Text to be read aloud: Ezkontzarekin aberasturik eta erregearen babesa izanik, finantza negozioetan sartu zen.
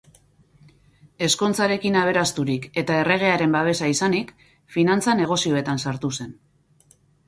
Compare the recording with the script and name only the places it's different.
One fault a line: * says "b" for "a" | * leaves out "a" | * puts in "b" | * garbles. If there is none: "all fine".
all fine